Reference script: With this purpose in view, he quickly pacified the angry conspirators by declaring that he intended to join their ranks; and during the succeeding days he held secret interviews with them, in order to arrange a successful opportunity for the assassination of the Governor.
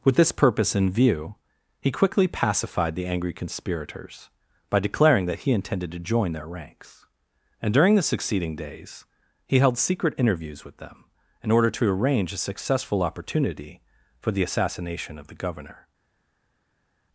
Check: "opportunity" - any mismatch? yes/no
no